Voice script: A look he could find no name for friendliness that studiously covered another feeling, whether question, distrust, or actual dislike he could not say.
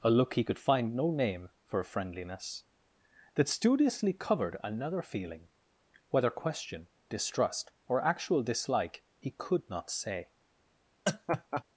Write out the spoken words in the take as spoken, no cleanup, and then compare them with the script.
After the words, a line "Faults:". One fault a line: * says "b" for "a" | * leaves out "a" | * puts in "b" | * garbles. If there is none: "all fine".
A look he could find no name for friendliness that studiously covered another feeling, whether question, distrust, or actual dislike he could not say.
Faults:
all fine